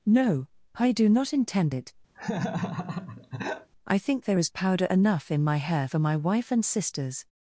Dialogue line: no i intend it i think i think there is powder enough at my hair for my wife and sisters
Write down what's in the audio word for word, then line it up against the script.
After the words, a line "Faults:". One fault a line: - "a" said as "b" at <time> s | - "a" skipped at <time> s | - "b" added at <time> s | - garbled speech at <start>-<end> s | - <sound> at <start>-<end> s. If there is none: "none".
no i do not intend it i think there is powder enough in my hair for my wife and sisters
Faults:
- "do not" added at 0.9 s
- laugh at 2.1-3.7 s
- "i think" skipped at 4.2 s
- "at" said as "in" at 5.3 s